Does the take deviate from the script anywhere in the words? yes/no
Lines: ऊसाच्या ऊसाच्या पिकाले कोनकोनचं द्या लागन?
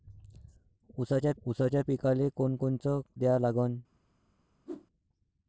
no